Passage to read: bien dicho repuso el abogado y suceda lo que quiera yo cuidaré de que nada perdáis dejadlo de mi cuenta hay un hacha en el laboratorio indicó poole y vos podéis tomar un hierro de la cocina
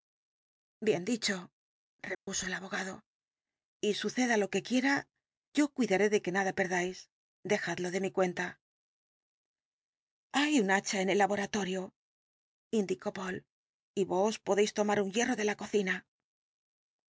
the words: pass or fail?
pass